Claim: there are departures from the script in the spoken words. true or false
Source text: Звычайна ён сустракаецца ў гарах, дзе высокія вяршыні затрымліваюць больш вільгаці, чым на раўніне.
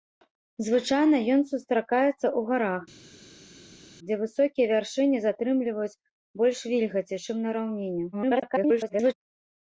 true